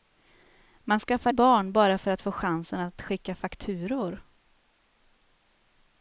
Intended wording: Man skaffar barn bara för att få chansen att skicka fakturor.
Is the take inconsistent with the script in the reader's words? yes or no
no